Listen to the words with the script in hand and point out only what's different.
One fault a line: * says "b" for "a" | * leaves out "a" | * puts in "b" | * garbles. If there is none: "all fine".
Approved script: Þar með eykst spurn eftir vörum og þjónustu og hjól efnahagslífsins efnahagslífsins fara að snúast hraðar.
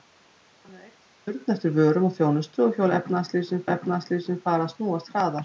all fine